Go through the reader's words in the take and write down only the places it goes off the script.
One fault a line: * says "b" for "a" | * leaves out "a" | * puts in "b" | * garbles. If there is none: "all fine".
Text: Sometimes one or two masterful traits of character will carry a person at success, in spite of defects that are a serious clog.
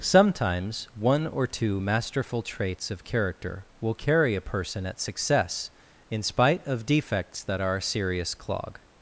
all fine